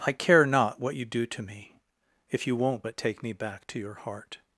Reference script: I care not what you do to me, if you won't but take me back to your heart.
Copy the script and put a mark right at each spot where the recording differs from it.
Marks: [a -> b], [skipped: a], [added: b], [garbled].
I care not what you do to me, if you won't but take me back to your heart.